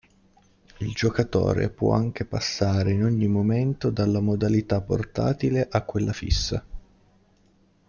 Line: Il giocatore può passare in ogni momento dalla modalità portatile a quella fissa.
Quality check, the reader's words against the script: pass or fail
fail